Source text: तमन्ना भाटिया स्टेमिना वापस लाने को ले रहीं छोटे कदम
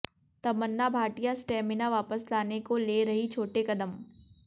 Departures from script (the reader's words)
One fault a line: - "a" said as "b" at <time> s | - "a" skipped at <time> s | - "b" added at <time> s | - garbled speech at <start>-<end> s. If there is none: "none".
none